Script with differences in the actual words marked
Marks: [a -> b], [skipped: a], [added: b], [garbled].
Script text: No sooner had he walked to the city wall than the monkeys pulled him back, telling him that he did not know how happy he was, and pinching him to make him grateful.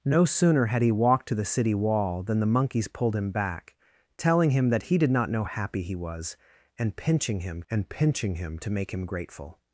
No sooner had he walked to the city wall than the monkeys pulled him back, telling him that he did not know [skipped: how] happy he was, and pinching him [added: and pinching him] to make him grateful.